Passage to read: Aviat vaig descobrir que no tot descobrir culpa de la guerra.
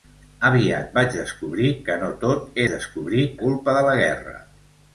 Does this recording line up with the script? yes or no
yes